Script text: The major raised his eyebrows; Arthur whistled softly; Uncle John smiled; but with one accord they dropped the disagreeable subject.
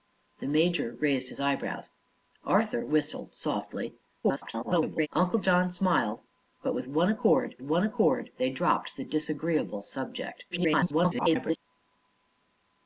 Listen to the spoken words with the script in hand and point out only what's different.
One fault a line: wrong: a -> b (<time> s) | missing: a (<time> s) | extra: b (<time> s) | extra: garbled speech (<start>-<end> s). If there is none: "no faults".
extra: garbled speech (4.2-5.1 s)
extra: one accord (7.6 s)
extra: garbled speech (10.5-11.6 s)